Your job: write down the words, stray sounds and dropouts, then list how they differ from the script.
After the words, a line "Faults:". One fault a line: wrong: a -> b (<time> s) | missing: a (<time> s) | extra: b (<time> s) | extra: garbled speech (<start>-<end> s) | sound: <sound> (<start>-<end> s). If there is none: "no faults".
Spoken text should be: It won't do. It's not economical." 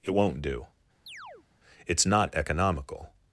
It won't do. It's not economical."
Faults:
sound: chirp (1.1-1.5 s)